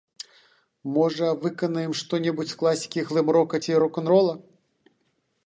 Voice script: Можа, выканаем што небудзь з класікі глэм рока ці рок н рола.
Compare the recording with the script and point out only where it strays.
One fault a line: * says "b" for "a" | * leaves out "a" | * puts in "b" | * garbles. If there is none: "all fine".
all fine